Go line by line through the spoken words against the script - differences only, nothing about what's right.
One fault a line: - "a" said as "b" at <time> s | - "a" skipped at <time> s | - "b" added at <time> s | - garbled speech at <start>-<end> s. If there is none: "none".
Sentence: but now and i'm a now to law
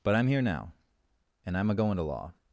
- "i'm here" added at 0.1 s
- "now" said as "going" at 1.7 s